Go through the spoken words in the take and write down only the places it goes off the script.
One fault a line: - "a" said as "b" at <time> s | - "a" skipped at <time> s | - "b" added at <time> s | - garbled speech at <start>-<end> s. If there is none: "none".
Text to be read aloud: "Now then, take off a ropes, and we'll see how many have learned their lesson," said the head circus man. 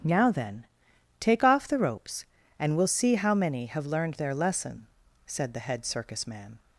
- "a" said as "the" at 1.7 s